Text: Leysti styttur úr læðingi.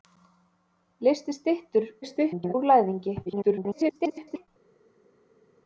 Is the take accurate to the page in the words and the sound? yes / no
no